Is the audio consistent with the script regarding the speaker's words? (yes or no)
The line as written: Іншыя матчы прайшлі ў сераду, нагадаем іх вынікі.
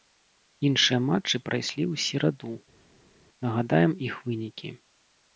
yes